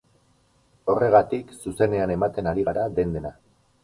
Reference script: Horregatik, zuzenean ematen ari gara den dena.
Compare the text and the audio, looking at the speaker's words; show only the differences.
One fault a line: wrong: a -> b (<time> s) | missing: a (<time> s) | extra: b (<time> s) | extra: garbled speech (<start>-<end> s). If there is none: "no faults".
no faults